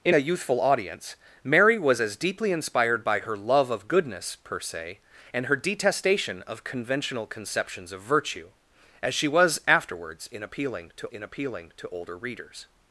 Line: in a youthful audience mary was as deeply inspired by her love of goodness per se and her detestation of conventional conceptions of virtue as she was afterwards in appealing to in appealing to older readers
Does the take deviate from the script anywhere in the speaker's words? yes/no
no